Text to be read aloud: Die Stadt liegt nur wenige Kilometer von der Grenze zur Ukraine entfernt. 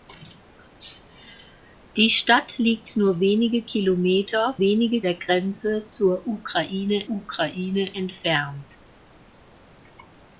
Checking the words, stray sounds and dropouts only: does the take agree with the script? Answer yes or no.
no